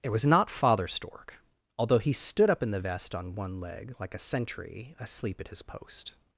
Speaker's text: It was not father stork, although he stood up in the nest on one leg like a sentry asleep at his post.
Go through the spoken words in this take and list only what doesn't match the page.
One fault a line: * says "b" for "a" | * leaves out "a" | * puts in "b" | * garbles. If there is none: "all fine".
* says "vest" for "nest"